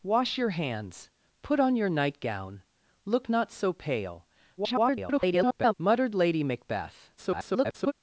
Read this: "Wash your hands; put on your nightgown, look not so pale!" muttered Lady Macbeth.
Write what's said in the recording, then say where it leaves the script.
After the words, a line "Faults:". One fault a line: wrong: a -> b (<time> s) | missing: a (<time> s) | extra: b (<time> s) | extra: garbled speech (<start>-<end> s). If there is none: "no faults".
"Wash your hands; put on your nightgown, look not so pale!" [garbled] muttered Lady Macbeth. [garbled]
Faults:
extra: garbled speech (4.6-5.7 s)
extra: garbled speech (7.2-7.9 s)